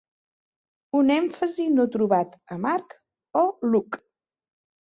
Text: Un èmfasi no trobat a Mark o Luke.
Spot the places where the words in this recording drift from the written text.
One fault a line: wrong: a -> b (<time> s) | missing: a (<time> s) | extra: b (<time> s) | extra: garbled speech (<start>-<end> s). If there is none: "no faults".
no faults